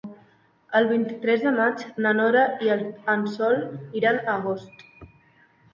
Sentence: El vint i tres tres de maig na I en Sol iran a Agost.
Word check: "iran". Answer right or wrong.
right